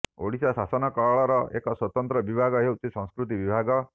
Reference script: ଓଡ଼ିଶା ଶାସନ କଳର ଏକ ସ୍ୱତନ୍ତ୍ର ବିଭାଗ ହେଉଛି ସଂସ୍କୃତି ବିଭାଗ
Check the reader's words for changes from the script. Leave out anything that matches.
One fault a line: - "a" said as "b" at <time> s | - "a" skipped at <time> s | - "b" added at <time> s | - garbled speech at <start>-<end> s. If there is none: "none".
none